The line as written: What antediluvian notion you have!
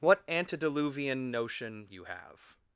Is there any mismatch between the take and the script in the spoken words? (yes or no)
no